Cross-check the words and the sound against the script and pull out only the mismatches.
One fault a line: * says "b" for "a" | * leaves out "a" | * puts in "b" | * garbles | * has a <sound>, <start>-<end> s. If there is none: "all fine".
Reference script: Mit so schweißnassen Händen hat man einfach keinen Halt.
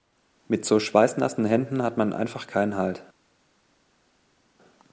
all fine